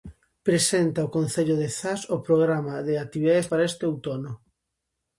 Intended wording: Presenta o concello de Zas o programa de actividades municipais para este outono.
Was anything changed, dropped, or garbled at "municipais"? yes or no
yes